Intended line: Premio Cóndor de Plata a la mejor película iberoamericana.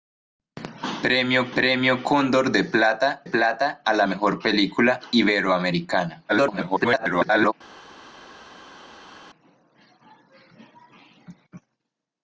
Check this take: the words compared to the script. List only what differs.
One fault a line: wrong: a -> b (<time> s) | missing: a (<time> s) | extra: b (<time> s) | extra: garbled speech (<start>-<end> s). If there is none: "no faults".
extra: premio (1.6 s)
extra: Plata (3.2 s)
extra: garbled speech (6.3-7.5 s)